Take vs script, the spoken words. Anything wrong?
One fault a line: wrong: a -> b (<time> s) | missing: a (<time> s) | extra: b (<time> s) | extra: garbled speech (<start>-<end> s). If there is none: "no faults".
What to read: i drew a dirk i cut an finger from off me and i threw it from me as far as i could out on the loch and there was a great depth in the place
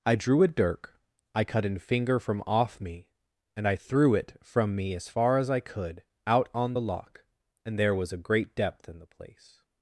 no faults